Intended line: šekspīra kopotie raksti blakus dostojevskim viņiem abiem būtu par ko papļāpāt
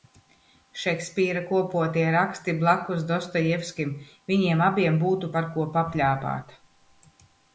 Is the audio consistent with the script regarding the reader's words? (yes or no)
yes